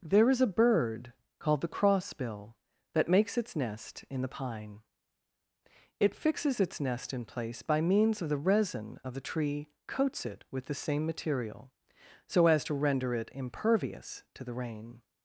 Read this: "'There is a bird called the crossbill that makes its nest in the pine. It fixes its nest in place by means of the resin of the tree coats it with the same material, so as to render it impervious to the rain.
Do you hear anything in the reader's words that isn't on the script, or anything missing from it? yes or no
no